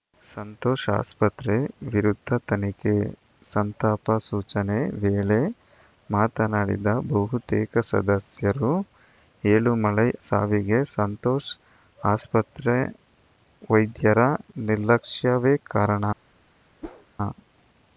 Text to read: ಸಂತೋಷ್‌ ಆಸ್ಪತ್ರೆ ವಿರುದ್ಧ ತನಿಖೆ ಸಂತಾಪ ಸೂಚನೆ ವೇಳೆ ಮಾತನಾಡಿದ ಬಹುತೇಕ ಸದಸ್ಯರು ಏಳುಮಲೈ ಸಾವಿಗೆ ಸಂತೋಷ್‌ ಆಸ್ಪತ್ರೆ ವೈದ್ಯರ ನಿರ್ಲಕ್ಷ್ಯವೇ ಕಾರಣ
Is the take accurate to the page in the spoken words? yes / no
yes